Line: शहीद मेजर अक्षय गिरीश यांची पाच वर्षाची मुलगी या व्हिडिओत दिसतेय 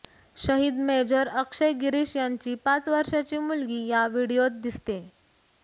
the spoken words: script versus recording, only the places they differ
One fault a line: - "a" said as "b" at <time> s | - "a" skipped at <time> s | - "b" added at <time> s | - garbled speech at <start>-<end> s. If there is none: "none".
none